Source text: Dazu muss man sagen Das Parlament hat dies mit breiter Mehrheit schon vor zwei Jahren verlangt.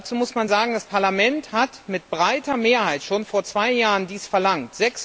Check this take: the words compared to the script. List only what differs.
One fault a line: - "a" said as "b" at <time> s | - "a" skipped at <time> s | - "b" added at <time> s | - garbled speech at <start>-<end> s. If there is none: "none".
none